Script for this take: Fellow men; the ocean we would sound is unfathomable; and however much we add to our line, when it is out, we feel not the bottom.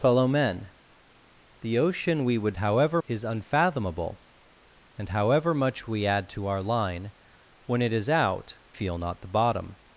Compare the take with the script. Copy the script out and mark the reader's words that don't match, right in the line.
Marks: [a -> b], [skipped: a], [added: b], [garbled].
Fellow men; the ocean we would [sound -> however] is unfathomable; and however much we add to our line, when it is out, [skipped: we] feel not the bottom.